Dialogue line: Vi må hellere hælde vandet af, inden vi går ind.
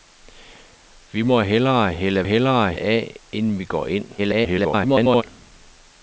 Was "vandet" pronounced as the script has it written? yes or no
no